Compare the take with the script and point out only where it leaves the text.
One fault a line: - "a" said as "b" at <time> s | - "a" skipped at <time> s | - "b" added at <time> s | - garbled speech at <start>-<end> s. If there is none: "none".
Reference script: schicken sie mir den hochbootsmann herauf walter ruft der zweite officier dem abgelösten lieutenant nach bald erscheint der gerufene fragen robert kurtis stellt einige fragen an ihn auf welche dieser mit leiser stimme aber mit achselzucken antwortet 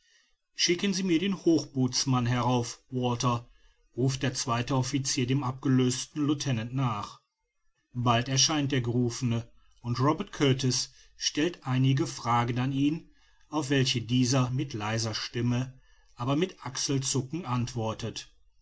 - "fragen" said as "und" at 9.8 s